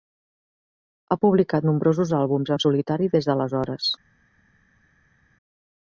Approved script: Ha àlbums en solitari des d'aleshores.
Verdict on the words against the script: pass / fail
fail